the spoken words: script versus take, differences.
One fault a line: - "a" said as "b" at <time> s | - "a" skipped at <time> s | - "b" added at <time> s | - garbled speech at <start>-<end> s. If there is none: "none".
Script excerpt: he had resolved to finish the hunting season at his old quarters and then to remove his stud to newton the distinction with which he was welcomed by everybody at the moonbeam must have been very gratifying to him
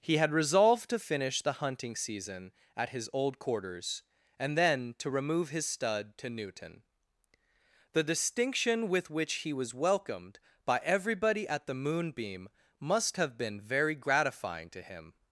none